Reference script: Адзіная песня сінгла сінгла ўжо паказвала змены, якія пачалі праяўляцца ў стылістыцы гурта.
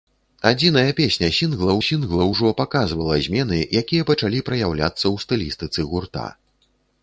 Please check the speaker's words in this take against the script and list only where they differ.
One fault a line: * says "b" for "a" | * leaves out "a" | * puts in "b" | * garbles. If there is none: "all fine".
all fine